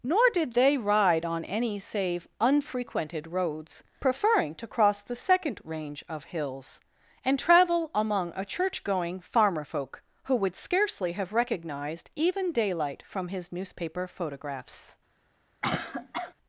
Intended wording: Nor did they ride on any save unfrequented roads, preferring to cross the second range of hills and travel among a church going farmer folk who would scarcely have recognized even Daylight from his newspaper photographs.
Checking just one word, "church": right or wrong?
right